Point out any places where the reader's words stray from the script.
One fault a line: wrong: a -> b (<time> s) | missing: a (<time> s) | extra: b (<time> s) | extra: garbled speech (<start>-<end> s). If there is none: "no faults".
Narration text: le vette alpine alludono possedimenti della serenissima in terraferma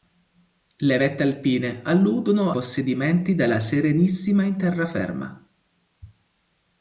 no faults